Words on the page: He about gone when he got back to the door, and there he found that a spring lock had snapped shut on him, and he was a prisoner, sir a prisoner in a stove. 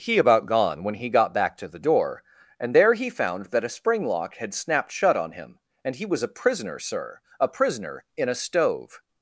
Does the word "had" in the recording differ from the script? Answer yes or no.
no